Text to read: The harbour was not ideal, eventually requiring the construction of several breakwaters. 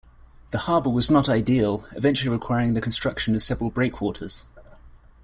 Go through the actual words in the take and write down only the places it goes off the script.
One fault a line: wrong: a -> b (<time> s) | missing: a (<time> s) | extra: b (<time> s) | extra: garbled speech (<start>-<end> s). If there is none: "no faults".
no faults